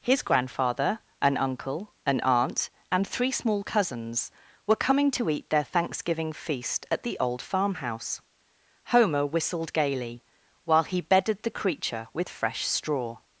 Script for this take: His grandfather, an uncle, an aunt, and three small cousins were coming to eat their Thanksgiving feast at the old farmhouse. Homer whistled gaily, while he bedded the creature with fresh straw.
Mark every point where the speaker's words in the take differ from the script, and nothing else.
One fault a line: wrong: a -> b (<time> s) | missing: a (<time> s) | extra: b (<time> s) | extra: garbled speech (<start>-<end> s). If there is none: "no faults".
no faults